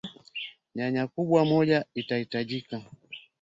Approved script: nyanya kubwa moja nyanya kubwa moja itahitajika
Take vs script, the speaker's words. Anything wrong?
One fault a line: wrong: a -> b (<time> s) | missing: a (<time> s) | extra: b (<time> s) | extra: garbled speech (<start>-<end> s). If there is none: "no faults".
missing: nyanya kubwa moja (1.9 s)